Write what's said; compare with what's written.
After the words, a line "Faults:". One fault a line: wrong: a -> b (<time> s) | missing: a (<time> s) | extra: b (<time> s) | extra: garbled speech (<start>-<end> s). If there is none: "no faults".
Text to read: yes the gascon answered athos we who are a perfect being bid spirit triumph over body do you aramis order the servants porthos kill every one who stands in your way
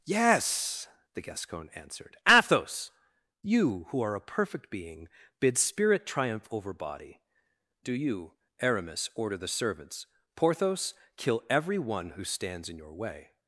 yes the gascon answered athos you who are a perfect being bid spirit triumph over body do you aramis order the servants porthos kill every one who stands in your way
Faults:
wrong: we -> you (3.4 s)